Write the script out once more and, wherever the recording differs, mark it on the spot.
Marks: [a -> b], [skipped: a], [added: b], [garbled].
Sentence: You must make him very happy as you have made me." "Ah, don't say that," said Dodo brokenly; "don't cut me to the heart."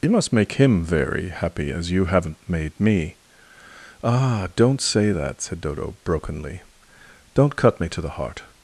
You must make him very happy as you [have -> haven't] made me." "Ah, don't say that," said Dodo brokenly; "don't cut me to the heart."